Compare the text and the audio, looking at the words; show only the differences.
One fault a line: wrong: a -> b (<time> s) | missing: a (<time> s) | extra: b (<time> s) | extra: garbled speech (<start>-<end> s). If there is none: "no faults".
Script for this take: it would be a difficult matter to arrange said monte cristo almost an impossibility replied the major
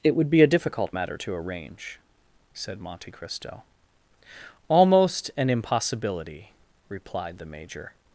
no faults